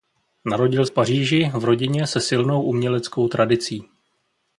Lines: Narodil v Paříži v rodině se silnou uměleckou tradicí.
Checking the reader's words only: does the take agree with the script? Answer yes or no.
yes